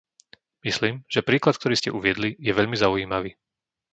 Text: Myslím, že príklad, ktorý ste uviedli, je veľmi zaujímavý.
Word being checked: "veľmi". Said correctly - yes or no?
yes